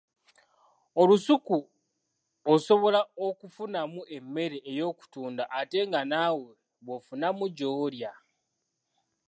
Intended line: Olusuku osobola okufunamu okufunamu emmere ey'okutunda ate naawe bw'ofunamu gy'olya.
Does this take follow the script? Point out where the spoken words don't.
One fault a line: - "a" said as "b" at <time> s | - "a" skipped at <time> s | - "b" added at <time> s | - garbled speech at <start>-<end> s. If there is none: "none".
- "okufunamu" skipped at 4.0 s
- "nga" added at 5.9 s